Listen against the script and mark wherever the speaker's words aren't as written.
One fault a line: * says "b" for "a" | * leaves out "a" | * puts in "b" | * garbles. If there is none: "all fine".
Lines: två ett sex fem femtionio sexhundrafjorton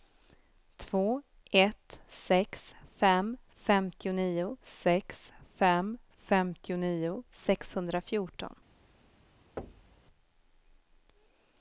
* puts in "sex fem femtionio"